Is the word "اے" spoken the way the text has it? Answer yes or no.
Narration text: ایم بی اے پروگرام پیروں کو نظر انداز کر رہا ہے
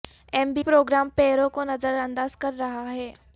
no